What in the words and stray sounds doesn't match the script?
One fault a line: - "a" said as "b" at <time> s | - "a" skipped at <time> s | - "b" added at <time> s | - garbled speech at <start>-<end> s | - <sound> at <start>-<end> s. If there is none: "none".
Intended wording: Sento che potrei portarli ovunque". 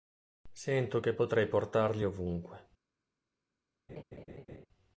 - laugh at 3.9-4.7 s